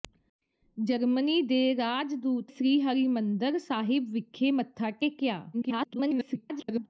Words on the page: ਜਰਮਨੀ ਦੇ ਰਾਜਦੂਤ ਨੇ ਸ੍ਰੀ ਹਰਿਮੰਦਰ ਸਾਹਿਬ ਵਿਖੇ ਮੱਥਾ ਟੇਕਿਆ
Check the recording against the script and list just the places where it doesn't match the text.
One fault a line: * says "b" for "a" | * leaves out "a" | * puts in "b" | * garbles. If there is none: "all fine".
* leaves out "ਨੇ"
* garbles